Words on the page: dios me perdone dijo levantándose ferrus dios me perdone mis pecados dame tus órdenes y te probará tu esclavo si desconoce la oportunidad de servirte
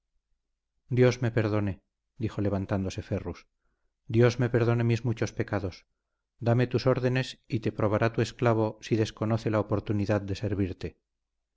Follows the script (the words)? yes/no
no